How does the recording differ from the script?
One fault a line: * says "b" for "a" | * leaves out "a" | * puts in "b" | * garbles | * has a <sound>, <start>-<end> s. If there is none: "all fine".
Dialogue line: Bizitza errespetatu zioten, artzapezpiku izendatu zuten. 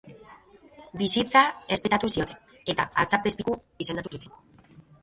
* puts in "eta"
* has a dropout, 4.1-4.1 s